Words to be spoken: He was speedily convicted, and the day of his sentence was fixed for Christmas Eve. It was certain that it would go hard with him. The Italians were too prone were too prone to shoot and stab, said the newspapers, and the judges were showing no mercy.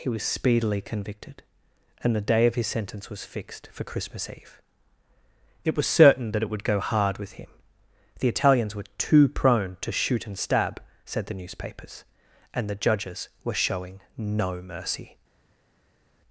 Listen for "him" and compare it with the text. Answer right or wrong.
right